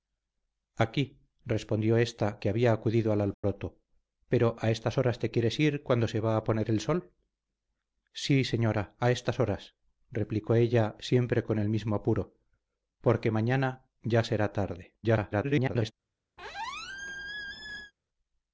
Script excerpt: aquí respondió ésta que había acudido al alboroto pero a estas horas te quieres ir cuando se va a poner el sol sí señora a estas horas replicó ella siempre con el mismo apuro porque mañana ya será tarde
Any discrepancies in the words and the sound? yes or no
yes